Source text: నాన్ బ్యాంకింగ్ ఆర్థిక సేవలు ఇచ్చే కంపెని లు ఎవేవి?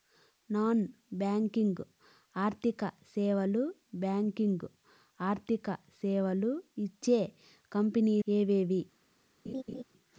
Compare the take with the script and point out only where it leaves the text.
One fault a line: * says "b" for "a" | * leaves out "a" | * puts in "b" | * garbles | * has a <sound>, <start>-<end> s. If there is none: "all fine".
* puts in "బ్యాంకింగ్ ఆర్థిక సేవలు"
* leaves out "లు"
* has a laugh, 9.5-9.8 s